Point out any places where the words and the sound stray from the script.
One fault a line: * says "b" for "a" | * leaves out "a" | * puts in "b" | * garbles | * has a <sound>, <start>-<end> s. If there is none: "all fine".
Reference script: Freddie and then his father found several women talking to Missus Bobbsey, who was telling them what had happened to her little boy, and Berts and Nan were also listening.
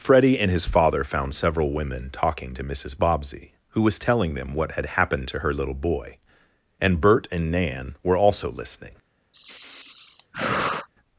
* leaves out "then"
* says "Bert" for "Berts"
* has a sigh, 9.3-10.9 s